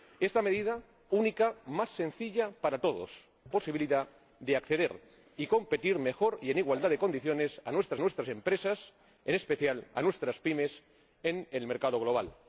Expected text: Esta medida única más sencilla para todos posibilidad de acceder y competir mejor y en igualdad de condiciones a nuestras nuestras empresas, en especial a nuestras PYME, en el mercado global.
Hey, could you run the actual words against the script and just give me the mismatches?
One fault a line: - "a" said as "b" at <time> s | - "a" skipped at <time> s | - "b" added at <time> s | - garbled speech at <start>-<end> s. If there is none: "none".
none